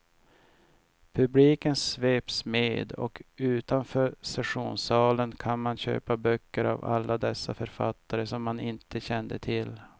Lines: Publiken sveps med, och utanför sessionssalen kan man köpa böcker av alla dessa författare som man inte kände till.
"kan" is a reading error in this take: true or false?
false